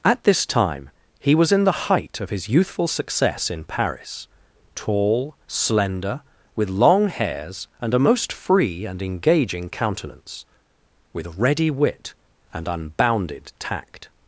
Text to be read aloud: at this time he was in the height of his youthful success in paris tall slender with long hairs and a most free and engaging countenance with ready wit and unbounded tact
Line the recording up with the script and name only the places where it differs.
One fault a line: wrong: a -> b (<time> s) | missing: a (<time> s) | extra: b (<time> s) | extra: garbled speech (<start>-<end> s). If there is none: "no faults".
no faults